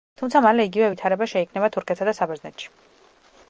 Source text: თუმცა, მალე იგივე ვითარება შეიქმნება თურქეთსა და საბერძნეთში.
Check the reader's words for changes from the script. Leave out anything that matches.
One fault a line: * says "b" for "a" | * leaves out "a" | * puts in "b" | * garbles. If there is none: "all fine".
all fine